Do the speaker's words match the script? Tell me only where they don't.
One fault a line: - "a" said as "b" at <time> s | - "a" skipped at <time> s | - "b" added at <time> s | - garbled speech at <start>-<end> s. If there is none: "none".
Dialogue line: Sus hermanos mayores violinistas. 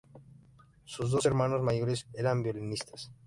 - "dos" added at 1.1 s
- "eran" added at 2.1 s